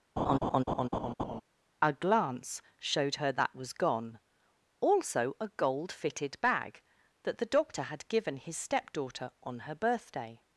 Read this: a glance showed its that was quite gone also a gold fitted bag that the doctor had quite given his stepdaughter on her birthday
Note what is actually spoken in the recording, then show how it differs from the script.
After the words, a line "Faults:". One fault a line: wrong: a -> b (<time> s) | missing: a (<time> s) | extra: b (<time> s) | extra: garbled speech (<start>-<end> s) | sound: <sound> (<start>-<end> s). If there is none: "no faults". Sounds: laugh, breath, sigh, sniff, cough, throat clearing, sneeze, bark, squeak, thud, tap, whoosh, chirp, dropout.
a glance showed her that was gone also a gold fitted bag that the doctor had given his stepdaughter on her birthday
Faults:
sound: laugh (0.2-1.4 s)
wrong: its -> her (3.2 s)
missing: quite (3.7 s)
missing: quite (8.1 s)